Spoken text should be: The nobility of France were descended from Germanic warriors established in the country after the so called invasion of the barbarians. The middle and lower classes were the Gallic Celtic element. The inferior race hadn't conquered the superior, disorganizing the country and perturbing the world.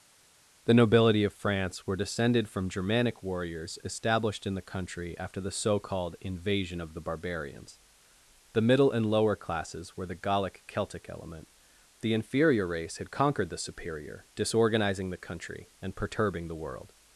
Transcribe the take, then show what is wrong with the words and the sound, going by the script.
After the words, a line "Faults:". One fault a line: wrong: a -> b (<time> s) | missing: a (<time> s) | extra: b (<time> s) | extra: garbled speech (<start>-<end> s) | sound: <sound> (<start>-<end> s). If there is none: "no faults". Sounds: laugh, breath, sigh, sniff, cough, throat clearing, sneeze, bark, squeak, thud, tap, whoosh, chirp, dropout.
The nobility of France were descended from Germanic warriors established in the country after the so called invasion of the barbarians. The middle and lower classes were the Gallic Celtic element. The inferior race had conquered the superior, disorganizing the country and perturbing the world.
Faults:
wrong: hadn't -> had (13.0 s)